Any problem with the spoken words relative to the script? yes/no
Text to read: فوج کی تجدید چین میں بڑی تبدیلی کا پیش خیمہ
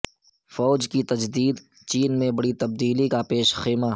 no